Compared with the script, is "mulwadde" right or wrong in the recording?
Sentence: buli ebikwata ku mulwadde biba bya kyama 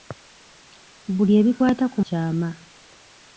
wrong